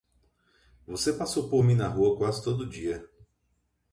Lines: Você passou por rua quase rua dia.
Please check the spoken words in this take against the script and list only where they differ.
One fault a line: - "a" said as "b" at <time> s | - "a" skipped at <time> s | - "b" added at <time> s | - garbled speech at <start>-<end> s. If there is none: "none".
- "mim na" added at 1.6 s
- "rua" said as "todo" at 2.4 s